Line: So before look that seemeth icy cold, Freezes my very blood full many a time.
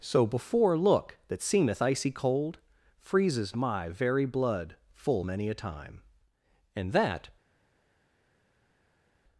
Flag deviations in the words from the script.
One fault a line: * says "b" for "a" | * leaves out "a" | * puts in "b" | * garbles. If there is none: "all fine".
* puts in "And that"